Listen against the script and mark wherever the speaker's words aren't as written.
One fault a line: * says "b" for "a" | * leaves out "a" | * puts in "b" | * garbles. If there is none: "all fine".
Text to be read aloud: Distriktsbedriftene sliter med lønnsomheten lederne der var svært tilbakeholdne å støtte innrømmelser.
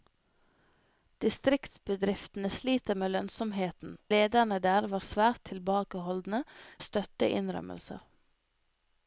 all fine